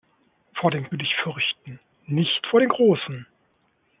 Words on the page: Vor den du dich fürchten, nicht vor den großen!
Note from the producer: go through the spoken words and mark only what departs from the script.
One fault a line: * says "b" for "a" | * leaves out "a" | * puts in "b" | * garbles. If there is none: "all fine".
all fine